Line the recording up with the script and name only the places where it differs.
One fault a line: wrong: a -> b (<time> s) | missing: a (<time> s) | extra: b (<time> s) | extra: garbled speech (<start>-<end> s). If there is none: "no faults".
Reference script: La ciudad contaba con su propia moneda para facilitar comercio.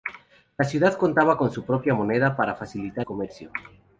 no faults